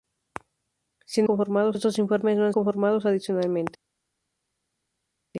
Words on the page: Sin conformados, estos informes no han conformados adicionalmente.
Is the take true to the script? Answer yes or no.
yes